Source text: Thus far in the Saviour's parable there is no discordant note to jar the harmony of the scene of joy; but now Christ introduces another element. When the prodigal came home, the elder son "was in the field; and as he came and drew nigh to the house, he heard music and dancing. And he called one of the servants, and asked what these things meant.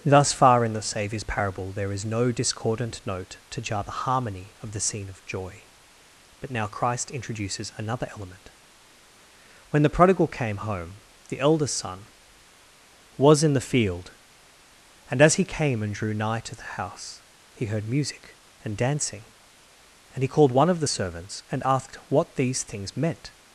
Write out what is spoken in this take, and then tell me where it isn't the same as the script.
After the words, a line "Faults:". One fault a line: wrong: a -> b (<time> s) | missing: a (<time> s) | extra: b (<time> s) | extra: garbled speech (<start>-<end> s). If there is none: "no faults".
Thus far in the Saviour's parable there is no discordant note to jar the harmony of the scene of joy; but now Christ introduces another element. When the prodigal came home, the eldest son "was in the field; and as he came and drew nigh to the house, he heard music and dancing. And he called one of the servants, and asked what these things meant.
Faults:
wrong: elder -> eldest (11.4 s)